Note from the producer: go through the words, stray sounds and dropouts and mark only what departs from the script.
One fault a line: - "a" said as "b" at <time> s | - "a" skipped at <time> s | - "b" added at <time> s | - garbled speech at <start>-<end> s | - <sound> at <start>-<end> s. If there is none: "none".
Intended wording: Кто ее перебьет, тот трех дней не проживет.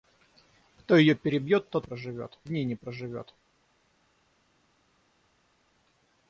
- "трех" said as "проживет" at 1.8 s